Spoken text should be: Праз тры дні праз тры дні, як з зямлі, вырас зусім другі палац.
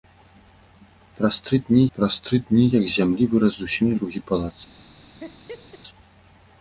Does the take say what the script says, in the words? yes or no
yes